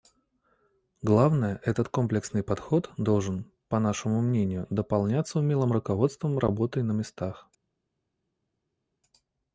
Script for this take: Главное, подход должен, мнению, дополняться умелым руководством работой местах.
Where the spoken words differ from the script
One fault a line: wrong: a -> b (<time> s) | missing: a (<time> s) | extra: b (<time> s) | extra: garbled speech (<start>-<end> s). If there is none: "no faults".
extra: этот комплексный (1.6 s)
extra: по нашему (3.7 s)
extra: на (6.8 s)